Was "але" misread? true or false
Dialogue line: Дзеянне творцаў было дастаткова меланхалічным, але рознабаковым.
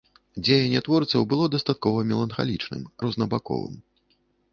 true